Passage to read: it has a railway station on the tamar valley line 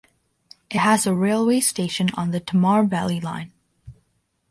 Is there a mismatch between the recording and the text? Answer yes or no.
no